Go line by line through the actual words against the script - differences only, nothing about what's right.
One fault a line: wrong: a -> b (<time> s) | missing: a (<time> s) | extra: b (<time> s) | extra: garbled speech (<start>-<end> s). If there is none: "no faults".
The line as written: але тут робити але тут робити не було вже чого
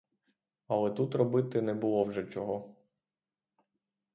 missing: але тут робити (1.6 s)